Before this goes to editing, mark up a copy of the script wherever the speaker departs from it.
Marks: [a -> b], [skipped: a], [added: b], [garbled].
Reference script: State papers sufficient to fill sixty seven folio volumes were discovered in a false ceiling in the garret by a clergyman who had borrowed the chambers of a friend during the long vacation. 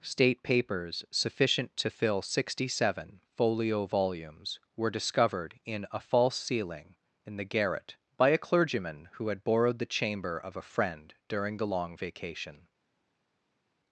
State papers sufficient to fill sixty seven folio volumes were discovered in a false ceiling in the garret by a clergyman who had borrowed the [chambers -> chamber] of a friend during the long vacation.